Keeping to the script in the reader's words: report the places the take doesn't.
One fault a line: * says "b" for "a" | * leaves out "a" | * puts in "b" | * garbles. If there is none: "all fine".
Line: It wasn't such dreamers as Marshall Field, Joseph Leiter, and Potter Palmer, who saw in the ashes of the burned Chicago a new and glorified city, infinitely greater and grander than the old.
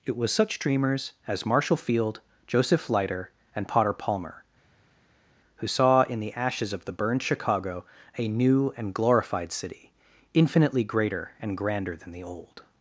* says "was" for "wasn't"